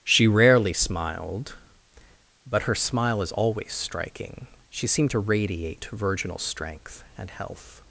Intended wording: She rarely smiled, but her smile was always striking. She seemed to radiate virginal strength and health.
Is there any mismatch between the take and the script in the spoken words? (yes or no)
yes